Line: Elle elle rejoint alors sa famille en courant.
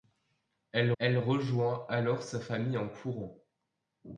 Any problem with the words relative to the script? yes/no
no